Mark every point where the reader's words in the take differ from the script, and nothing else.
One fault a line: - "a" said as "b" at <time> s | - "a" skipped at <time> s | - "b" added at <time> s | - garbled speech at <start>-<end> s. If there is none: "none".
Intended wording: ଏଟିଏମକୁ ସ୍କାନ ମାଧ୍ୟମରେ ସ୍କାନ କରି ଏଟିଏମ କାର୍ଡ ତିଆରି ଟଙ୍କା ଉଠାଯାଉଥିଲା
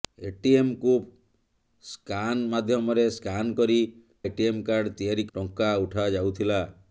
none